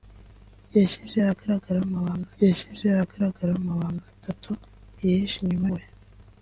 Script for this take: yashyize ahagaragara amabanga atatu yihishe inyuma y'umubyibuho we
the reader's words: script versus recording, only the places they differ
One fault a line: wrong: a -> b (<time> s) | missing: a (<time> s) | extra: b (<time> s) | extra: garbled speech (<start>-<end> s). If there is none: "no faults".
extra: yashyize ahagaragara amabanga (2.4 s)
missing: y'umubyibuho (5.7 s)